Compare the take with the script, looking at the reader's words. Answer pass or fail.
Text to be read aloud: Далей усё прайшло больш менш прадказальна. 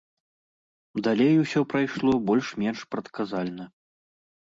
pass